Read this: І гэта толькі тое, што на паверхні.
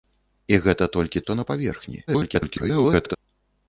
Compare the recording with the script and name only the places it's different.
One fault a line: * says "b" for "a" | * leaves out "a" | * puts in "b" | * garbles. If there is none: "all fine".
* leaves out "тое"
* garbles